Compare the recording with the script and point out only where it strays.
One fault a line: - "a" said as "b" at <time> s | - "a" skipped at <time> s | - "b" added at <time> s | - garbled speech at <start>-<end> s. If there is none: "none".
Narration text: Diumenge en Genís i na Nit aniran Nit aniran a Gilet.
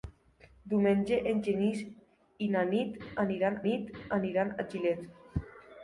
none